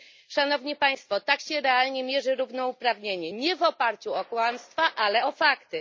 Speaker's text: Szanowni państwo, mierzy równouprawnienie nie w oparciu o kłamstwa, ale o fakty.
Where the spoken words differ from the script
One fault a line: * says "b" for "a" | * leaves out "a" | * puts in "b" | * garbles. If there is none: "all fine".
* puts in "tak się realnie"